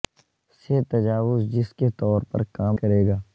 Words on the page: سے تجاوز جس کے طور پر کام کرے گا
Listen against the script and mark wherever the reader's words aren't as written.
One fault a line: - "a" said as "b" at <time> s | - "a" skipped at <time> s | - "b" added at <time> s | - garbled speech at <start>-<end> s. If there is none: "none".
none